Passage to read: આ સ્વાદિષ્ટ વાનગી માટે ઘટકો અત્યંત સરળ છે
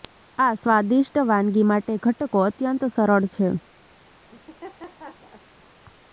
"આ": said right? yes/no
yes